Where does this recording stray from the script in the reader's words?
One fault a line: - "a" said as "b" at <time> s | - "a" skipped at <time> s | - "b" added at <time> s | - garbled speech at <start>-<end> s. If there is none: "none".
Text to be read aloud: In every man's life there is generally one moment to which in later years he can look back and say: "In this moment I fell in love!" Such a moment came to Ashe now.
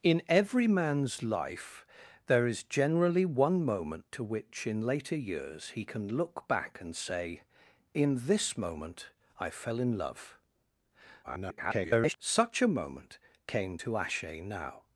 - garbled speech at 11.2-12.2 s